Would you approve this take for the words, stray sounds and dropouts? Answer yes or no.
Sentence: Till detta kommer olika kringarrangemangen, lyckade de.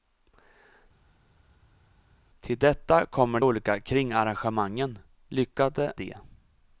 yes